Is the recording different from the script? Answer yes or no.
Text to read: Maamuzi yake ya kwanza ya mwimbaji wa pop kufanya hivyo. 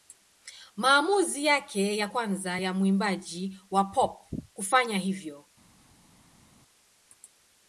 no